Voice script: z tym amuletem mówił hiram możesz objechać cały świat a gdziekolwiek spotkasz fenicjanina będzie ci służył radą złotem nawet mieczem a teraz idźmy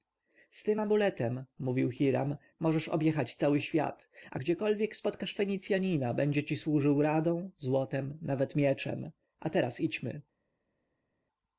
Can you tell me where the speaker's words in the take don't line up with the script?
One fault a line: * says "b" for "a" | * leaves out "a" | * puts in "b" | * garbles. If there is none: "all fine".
all fine